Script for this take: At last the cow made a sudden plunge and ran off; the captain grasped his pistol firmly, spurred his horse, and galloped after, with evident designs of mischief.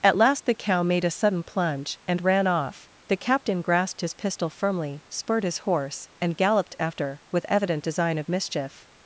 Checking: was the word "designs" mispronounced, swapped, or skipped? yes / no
yes